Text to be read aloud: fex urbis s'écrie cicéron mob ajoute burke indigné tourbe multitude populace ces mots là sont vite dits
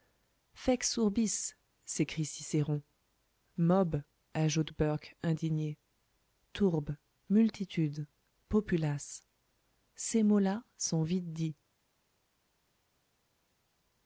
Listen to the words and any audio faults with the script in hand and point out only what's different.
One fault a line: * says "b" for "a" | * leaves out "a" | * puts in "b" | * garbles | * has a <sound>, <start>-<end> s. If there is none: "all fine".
all fine